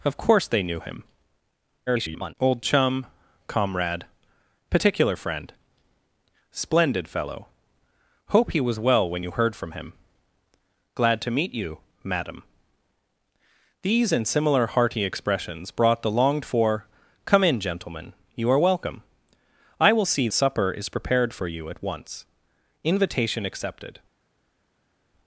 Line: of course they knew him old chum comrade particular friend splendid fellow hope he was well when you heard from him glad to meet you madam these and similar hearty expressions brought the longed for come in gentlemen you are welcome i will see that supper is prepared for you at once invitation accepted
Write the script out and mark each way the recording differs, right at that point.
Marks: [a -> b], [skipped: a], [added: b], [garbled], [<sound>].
of course they knew him [garbled] old chum comrade particular friend splendid fellow hope he was well when you heard from him glad to meet you madam these and similar hearty expressions brought the longed for come in gentlemen you are welcome i will see [skipped: that] supper is prepared for you at once invitation accepted